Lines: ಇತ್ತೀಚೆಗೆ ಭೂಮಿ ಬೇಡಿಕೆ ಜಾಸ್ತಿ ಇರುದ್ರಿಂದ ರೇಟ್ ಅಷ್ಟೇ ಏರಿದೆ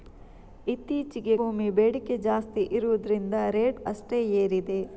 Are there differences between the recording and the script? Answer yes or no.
no